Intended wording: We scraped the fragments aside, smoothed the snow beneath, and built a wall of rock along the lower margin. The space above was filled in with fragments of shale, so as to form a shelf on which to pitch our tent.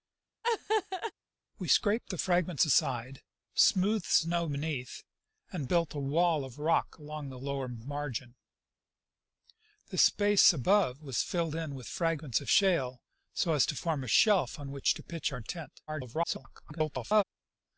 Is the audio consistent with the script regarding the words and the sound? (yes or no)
no